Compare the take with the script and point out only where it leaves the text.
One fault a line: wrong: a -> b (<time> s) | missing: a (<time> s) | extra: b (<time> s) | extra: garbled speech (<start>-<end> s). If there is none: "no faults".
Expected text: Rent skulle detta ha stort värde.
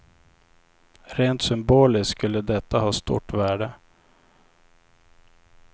extra: symboliskt (1.4 s)